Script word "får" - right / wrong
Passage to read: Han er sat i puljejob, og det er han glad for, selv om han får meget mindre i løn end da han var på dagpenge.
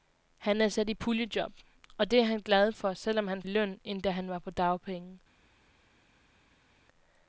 wrong